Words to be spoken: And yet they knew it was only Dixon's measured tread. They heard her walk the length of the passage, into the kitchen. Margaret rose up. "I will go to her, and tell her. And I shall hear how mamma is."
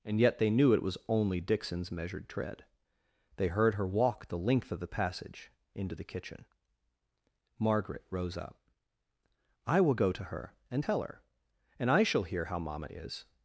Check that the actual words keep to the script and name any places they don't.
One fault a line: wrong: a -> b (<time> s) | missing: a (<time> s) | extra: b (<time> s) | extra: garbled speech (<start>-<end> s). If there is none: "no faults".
no faults